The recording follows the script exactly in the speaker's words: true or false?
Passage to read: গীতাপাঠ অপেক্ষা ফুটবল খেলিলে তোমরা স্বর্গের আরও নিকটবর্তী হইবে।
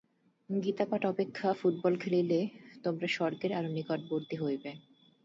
true